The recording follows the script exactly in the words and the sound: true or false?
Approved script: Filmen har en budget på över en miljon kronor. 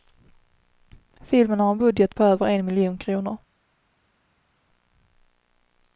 true